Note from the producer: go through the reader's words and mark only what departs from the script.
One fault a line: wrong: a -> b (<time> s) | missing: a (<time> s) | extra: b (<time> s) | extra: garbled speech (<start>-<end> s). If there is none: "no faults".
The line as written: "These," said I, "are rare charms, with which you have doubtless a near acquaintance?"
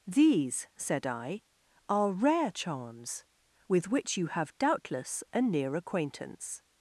no faults